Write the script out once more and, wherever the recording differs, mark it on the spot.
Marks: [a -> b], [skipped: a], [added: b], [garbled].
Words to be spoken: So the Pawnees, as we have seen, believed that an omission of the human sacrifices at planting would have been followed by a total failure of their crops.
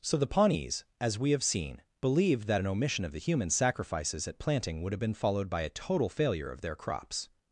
So the Pawnees, as we have seen, believed that an omission of the human sacrifices at planting would have been followed by a total failure of their crops.